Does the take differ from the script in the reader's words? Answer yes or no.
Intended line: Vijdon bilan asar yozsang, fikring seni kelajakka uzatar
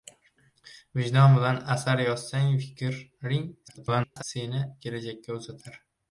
yes